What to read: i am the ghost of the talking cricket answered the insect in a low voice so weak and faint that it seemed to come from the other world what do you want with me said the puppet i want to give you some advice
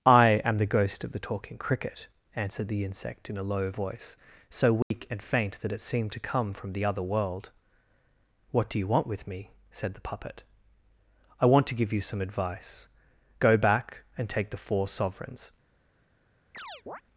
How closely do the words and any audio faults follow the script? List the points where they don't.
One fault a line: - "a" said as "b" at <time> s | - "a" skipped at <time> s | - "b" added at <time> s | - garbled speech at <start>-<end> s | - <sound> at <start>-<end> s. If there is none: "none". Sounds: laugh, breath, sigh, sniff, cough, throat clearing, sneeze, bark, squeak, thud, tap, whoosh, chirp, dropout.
- dropout at 4.8-4.9 s
- "go back and take the four sovereigns" added at 13.4 s
- chirp at 16.5-17.0 s